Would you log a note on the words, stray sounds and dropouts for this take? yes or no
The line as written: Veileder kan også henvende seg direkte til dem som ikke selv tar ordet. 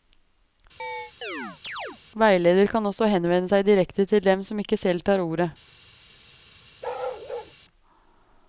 yes